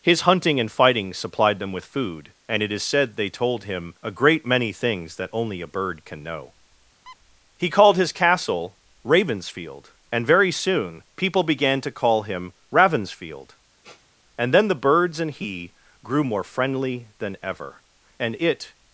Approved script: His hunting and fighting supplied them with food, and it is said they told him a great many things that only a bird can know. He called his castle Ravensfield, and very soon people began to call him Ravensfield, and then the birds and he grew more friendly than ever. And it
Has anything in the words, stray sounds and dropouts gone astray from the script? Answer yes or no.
yes